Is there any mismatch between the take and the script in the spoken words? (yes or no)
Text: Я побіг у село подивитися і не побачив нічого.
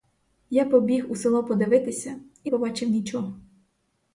yes